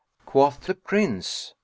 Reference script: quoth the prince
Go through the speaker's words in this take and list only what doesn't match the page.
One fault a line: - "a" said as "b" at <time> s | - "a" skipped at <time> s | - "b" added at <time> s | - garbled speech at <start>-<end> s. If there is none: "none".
none